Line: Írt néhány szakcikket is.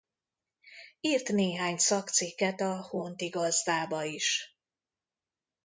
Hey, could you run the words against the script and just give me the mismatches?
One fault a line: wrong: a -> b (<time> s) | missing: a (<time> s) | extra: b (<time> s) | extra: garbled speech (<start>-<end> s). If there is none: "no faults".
extra: a Honti Gazdába (2.6 s)